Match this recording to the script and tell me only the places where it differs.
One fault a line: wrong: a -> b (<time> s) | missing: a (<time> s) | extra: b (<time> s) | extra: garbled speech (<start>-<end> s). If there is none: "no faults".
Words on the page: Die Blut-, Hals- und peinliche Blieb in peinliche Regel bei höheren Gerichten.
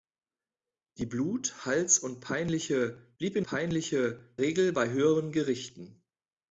no faults